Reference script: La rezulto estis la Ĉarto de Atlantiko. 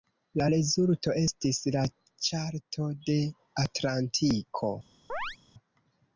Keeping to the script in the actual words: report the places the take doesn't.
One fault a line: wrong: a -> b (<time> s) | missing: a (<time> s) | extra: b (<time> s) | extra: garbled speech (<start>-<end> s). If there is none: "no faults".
no faults